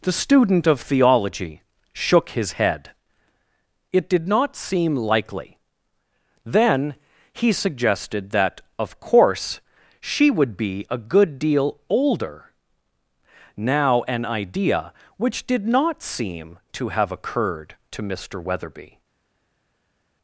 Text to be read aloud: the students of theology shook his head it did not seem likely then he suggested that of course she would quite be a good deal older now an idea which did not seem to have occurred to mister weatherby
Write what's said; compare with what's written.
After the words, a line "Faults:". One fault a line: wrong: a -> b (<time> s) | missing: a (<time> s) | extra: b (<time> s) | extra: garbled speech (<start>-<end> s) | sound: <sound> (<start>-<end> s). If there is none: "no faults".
the student of theology shook his head it did not seem likely then he suggested that of course she would be a good deal older now an idea which did not seem to have occurred to mister weatherby
Faults:
wrong: students -> student (0.2 s)
missing: quite (10.5 s)